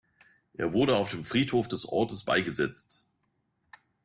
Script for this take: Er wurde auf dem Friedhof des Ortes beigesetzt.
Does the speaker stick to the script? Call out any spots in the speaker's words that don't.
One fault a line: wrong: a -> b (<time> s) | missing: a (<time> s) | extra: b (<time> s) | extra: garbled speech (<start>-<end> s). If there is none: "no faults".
no faults